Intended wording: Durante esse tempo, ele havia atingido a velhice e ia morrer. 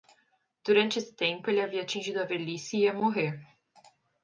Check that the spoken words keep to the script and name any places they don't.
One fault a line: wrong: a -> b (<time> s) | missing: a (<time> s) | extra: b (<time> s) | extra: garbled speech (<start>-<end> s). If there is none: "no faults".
no faults